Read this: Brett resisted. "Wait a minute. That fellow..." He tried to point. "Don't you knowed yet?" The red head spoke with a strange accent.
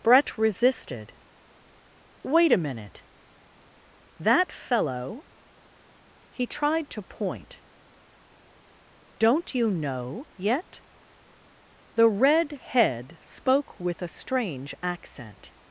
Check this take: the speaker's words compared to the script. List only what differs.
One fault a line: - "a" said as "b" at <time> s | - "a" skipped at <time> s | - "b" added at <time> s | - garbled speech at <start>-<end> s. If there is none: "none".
- "knowed" said as "know" at 9.7 s